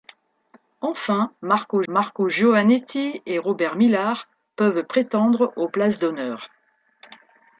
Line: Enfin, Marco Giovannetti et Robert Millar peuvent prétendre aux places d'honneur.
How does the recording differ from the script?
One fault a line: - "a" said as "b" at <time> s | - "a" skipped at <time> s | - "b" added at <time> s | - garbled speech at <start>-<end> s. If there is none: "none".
- "Marco" added at 1.9 s